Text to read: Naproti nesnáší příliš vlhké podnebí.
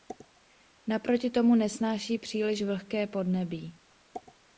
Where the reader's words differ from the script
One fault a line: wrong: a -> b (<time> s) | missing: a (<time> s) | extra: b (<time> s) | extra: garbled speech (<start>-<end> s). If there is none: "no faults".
extra: tomu (1.3 s)